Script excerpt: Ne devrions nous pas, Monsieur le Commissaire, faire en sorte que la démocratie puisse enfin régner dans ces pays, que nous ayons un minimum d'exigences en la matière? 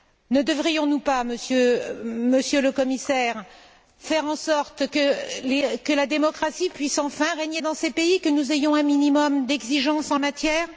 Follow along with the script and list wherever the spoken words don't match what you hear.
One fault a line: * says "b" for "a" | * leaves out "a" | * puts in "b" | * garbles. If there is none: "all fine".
* leaves out "la"